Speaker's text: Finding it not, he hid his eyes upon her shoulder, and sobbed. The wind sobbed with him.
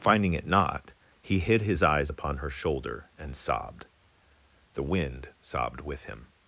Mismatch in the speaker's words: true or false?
false